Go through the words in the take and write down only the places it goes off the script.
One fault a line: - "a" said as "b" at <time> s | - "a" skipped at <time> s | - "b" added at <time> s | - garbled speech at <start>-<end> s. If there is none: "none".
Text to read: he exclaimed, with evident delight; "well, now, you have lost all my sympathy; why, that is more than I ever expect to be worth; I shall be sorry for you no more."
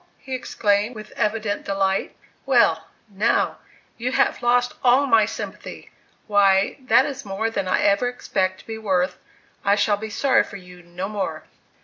none